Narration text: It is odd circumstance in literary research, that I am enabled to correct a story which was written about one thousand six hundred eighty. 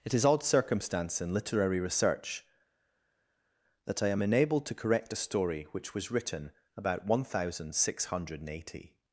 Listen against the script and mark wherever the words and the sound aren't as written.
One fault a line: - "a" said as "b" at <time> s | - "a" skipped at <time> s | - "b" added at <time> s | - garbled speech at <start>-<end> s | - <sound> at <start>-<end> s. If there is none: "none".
none